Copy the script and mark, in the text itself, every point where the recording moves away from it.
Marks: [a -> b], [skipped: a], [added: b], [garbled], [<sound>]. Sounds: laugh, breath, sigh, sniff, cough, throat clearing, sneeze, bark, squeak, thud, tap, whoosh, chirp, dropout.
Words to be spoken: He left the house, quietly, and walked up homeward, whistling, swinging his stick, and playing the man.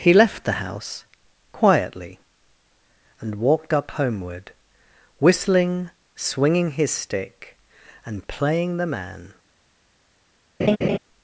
He left the house, quietly, and walked up homeward, whistling, swinging his stick, and playing the man. [laugh]